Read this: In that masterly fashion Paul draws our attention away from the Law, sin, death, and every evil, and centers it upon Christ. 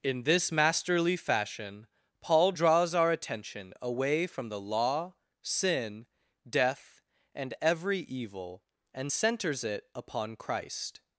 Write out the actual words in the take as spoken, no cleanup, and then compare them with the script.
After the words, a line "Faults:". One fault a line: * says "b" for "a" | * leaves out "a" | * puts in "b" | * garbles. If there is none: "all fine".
In this masterly fashion Paul draws our attention away from the Law, sin, death, and every evil, and centers it upon Christ.
Faults:
* says "this" for "that"